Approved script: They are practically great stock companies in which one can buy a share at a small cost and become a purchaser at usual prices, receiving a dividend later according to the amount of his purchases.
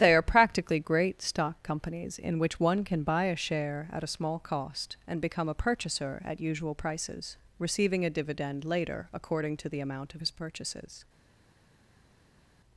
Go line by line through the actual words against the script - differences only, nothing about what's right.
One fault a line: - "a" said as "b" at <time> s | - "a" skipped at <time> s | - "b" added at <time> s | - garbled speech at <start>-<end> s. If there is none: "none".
none